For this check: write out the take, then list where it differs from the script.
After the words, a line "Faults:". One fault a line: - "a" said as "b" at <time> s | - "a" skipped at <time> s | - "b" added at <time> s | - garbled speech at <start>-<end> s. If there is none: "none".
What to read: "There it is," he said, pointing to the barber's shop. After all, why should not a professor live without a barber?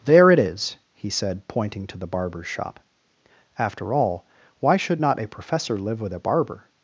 "There it is," he said, pointing to the barber's shop. After all, why should not a professor live with a barber?
Faults:
- "without" said as "with" at 6.0 s